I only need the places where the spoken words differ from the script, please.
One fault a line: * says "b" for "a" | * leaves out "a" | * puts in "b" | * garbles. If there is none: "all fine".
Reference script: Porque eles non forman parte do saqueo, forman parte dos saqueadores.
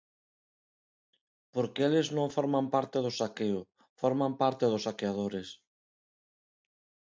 all fine